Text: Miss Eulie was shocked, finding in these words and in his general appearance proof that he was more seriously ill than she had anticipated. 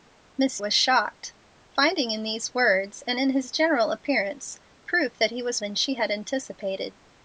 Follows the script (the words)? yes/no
no